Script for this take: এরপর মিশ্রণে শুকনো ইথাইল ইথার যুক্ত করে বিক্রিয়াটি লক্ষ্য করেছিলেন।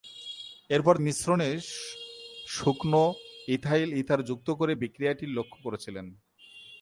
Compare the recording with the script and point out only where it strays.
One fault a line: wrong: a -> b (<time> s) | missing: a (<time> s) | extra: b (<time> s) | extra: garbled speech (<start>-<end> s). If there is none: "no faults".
no faults